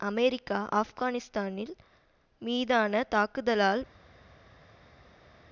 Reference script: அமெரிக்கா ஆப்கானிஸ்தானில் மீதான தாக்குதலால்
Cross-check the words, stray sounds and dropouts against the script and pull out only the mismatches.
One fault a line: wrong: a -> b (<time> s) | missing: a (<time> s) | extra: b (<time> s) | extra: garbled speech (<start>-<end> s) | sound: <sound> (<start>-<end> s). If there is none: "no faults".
no faults